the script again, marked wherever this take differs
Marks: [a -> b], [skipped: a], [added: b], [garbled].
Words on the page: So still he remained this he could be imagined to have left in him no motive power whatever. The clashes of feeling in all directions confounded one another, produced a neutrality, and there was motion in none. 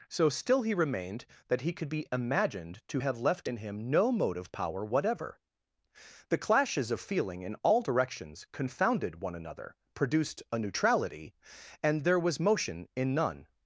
So still he remained [this -> that] he could be imagined to have left in him no motive power whatever. The clashes of feeling in all directions confounded one another, produced a neutrality, and there was motion in none.